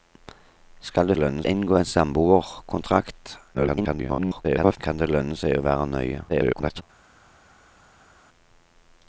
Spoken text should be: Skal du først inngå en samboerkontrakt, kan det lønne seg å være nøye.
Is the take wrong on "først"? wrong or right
wrong